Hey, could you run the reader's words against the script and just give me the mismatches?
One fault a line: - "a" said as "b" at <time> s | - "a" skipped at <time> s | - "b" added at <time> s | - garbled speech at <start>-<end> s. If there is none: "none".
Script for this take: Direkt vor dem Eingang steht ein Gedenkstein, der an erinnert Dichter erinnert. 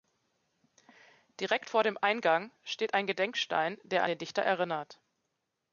- "erinnert" said as "den" at 4.1 s